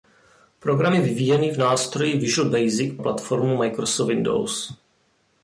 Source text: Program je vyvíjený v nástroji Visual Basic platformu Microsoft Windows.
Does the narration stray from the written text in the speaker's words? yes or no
no